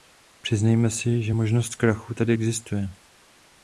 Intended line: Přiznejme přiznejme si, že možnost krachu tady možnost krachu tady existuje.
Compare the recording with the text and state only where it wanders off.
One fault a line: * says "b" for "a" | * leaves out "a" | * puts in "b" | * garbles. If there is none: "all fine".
* leaves out "přiznejme"
* leaves out "možnost krachu tady"